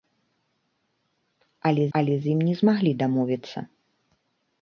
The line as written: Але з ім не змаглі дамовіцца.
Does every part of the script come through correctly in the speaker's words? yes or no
no